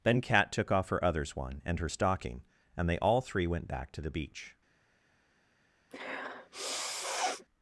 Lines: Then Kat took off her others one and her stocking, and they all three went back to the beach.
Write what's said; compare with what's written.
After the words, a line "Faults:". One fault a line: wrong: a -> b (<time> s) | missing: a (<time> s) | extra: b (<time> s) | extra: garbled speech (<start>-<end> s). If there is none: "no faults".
Then Kat took off her others one and her stocking, and they all three went back to the beach.
Faults:
no faults